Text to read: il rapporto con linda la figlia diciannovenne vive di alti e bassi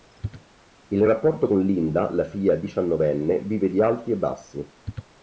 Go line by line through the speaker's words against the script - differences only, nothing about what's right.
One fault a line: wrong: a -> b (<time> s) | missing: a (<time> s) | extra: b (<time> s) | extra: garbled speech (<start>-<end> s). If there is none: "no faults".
no faults